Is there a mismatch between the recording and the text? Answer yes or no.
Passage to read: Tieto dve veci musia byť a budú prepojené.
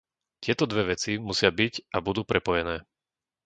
no